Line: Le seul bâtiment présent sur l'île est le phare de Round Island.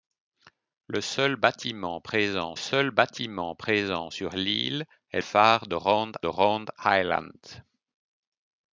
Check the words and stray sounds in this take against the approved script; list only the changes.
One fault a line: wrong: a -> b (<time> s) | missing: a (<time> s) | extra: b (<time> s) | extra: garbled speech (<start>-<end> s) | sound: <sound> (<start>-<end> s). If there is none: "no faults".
extra: seul bâtiment présent (2.5 s)
missing: le (5.2 s)
extra: Round (6.3 s)